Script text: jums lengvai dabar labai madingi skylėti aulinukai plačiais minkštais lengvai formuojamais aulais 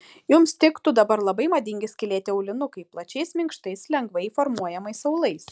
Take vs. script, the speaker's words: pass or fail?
fail